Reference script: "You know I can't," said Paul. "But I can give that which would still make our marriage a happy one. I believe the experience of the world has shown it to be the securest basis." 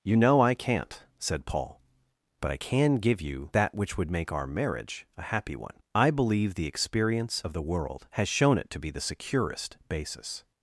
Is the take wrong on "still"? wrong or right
wrong